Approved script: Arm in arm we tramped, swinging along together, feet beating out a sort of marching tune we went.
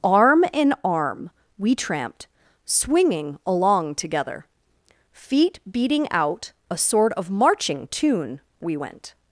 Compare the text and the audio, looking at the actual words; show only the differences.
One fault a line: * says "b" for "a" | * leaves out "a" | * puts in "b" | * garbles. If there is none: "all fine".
all fine